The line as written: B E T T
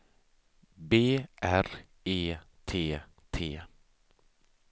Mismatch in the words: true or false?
true